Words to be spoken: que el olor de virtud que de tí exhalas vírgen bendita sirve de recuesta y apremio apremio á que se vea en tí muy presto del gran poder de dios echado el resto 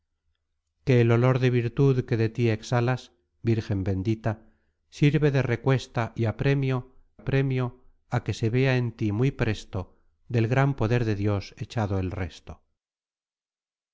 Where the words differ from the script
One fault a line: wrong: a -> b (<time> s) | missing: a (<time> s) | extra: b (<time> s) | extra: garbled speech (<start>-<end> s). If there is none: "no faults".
no faults